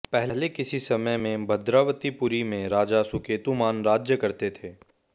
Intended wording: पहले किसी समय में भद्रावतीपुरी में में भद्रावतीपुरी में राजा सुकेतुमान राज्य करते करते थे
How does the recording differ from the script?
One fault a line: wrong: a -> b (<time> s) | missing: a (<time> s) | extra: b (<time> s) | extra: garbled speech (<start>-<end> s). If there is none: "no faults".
missing: में भद्रावतीपुरी में (2.7 s)
missing: करते (4.5 s)